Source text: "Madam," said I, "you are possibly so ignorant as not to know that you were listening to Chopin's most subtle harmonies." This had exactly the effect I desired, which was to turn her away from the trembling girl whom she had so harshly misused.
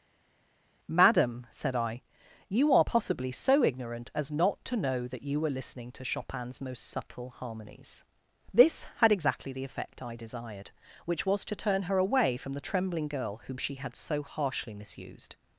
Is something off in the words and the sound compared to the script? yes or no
no